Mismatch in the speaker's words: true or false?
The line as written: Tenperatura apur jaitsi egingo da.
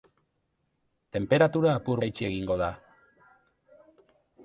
false